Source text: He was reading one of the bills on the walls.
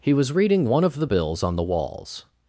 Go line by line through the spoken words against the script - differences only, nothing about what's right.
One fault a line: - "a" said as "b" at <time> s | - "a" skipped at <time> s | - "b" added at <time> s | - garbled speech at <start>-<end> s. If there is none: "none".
none